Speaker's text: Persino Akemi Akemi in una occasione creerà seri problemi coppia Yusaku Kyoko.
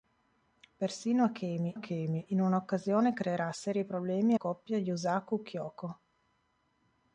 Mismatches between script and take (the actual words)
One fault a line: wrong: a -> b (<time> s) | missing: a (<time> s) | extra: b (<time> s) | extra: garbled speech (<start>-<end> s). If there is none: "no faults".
no faults